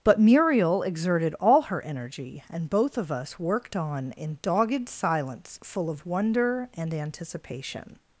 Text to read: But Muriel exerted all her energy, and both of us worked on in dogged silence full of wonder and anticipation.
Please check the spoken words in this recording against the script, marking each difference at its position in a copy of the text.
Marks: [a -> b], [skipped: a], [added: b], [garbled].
But Muriel exerted all her energy, and both of us worked on in dogged silence full of wonder and anticipation.